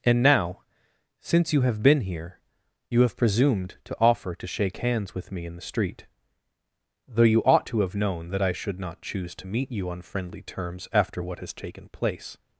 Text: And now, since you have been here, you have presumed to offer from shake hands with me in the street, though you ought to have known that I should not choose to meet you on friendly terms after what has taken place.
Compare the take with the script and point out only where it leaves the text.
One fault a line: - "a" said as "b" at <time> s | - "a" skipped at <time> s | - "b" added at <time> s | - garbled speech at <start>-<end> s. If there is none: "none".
- "from" said as "to" at 4.3 s